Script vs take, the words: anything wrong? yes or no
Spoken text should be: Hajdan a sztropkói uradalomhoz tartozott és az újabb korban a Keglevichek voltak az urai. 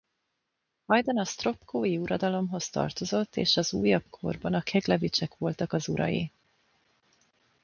no